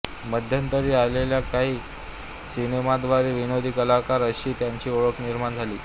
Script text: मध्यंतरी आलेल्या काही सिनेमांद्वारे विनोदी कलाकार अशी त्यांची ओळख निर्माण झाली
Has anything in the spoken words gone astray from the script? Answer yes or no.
no